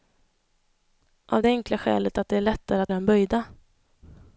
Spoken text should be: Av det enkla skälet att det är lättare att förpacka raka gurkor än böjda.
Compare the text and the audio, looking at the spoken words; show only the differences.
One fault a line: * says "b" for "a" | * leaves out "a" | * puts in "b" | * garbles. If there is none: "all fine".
* leaves out "förpacka raka gurkor"